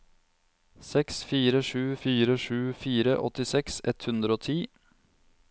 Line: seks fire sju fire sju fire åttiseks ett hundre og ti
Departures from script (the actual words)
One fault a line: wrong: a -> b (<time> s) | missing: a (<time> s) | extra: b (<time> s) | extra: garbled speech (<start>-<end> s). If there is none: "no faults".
no faults